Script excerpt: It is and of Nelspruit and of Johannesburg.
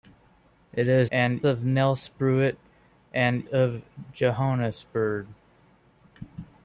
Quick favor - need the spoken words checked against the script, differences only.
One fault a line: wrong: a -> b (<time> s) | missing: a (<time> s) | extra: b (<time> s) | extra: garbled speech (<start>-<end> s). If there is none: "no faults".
no faults